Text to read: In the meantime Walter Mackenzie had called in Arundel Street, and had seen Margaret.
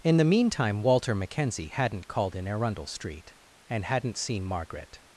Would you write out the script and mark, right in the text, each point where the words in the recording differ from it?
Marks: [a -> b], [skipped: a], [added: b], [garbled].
In the meantime Walter Mackenzie [had -> hadn't] called in Arundel Street, and [had -> hadn't] seen Margaret.